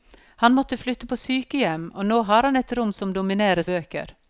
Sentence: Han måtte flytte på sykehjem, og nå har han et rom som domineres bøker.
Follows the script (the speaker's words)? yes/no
yes